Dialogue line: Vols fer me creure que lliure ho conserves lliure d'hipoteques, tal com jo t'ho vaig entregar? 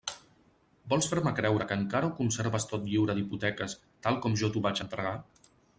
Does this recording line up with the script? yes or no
no